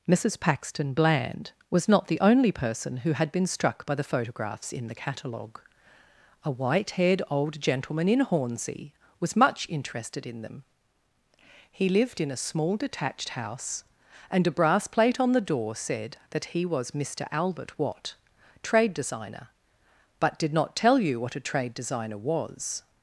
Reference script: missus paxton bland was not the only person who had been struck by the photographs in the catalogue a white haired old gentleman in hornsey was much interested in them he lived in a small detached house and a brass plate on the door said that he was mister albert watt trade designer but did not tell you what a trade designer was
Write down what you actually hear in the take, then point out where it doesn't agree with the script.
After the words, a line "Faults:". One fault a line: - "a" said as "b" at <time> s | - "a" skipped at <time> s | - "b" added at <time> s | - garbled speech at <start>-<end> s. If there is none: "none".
missus paxton bland was not the only person who had been struck by the photographs in the catalogue a white haired old gentleman in hornsey was much interested in them he lived in a small detached house and a brass plate on the door said that he was mister albert watt trade designer but did not tell you what a trade designer was
Faults:
none